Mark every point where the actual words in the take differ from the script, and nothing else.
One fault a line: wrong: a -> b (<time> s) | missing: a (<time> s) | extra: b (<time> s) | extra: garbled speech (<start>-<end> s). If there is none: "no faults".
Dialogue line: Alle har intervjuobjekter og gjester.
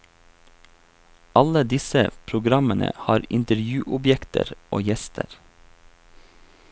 extra: disse programmene (1.7 s)